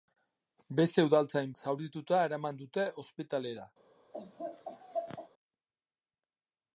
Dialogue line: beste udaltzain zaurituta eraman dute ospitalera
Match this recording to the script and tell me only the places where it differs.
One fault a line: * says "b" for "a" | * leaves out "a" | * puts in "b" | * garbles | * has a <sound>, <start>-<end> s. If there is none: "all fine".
* has a laugh, 4.1-5.3 s